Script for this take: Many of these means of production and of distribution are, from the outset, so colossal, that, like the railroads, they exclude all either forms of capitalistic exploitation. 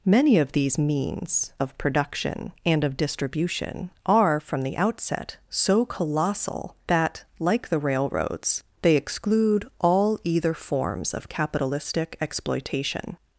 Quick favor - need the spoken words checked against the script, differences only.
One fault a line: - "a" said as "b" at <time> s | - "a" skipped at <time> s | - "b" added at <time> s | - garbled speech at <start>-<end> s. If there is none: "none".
none